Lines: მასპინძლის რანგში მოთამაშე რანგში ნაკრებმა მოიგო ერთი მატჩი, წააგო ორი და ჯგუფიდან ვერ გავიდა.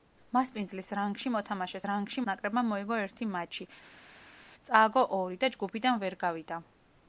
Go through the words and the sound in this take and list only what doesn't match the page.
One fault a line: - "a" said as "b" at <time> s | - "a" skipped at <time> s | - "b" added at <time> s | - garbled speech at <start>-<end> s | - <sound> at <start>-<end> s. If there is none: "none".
none